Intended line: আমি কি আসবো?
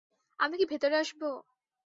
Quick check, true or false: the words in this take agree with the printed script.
false